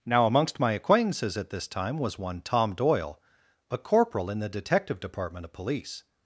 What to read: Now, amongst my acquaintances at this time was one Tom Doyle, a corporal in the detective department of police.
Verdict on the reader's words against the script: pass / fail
pass